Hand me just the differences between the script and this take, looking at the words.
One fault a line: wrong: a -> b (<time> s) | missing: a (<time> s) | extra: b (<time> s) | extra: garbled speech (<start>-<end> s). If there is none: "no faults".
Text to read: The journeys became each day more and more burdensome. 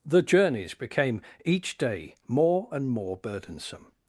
no faults